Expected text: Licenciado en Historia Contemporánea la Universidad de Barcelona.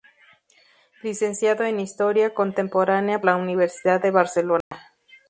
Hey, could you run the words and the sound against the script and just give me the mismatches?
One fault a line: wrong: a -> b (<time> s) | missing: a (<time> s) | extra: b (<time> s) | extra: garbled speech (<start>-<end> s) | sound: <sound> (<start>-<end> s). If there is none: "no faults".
sound: dropout (4.6-4.7 s)